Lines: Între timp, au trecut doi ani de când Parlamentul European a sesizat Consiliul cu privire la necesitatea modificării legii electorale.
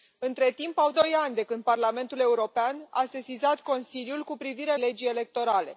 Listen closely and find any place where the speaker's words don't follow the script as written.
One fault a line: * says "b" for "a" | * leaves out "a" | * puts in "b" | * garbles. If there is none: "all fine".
* leaves out "trecut"
* leaves out "la necesitatea modificării"